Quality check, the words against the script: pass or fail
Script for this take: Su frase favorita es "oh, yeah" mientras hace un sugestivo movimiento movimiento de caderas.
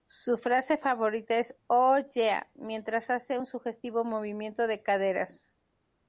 fail